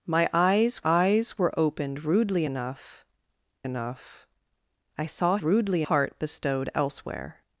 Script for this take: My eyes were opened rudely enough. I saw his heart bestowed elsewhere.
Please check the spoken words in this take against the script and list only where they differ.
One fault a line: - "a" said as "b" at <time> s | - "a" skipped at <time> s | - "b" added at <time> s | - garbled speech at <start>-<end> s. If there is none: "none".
- "eyes" added at 0.8 s
- "enough" added at 3.6 s
- "his" said as "rudely" at 5.4 s